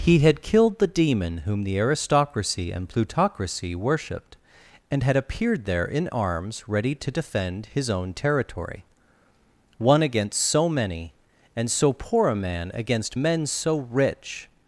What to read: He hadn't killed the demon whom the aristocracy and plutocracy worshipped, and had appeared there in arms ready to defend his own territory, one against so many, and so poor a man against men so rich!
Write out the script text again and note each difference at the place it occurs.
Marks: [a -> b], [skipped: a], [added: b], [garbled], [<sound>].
He [hadn't -> had] killed the demon whom the aristocracy and plutocracy worshipped, and had appeared there in arms ready to defend his own territory, one against so many, and so poor a man against men so rich!